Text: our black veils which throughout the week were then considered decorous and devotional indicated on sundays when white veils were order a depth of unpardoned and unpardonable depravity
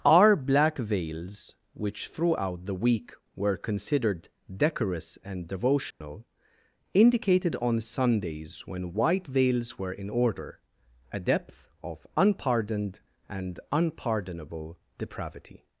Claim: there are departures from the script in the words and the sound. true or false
true